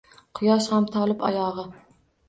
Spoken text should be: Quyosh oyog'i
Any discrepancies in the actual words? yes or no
yes